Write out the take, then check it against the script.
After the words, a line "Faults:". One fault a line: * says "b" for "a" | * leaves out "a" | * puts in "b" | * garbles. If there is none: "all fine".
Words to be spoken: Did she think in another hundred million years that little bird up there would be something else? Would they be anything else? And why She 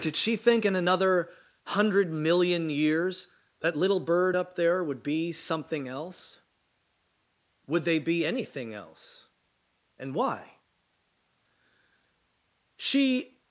Did she think in another hundred million years that little bird up there would be something else? Would they be anything else? And why She
Faults:
all fine